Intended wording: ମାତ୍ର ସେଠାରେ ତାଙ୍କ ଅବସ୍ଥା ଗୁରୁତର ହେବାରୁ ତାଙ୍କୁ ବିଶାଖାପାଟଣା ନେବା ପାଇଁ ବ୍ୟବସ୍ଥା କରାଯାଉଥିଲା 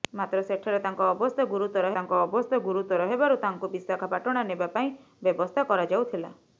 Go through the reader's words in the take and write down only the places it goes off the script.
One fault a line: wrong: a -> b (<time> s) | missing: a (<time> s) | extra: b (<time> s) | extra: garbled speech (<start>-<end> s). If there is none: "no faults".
extra: ତାଙ୍କ ଅବସ୍ଥା ଗୁରୁତର (2.0 s)